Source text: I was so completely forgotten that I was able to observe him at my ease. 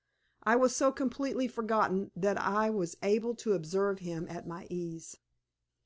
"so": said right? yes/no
yes